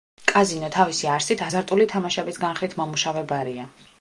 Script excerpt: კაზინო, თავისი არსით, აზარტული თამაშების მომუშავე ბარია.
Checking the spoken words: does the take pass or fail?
fail